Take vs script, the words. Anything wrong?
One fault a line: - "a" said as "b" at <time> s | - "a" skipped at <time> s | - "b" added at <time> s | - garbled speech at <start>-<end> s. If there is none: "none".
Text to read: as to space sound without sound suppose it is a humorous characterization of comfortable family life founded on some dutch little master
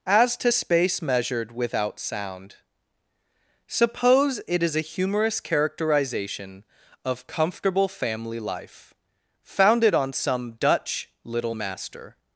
- "sound" said as "measured" at 1.0 s